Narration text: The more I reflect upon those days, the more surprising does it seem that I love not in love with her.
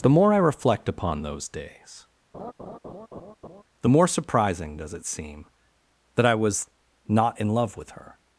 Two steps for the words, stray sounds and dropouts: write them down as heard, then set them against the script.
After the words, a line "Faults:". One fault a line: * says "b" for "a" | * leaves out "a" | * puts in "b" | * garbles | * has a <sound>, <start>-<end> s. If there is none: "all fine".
The more I reflect upon those days, the more surprising does it seem that I was not in love with her.
Faults:
* has a laugh, 2.3-3.6 s
* says "was" for "love"